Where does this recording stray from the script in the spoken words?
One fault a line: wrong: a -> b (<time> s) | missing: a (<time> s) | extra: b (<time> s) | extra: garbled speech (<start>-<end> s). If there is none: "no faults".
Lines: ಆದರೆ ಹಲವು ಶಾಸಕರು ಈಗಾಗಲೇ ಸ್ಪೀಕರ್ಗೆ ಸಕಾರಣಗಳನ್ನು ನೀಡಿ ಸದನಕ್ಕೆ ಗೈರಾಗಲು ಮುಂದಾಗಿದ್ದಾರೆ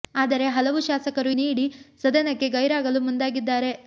missing: ಈಗಾಗಲೇ ಸ್ಪೀಕರ್ಗೆ ಸಕಾರಣಗಳನ್ನು (1.3 s)